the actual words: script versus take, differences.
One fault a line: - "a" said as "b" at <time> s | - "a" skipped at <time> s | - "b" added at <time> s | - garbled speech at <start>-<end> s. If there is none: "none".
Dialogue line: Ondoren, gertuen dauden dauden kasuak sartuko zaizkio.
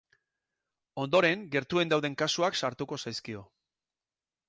- "dauden" skipped at 2.2 s